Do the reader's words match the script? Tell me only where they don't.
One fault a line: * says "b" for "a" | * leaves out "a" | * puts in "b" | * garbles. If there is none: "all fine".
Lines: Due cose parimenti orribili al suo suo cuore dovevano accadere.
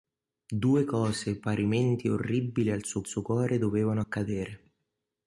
all fine